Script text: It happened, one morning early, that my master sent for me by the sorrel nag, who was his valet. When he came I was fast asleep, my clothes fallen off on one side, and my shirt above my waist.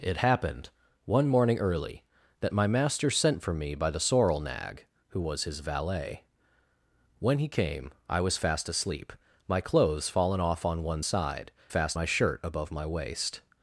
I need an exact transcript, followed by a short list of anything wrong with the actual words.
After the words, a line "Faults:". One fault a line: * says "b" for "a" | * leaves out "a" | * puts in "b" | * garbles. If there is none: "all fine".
It happened, one morning early, that my master sent for me by the sorrel nag, who was his valet. When he came I was fast asleep, my clothes fallen off on one side, fast my shirt above my waist.
Faults:
* says "fast" for "and"